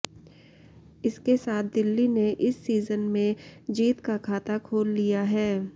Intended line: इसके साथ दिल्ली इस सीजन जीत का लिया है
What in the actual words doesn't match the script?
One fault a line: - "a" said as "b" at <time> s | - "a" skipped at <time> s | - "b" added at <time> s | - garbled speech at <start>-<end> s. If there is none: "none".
- "ने" added at 2.1 s
- "में" added at 3.1 s
- "खाता खोल" added at 4.2 s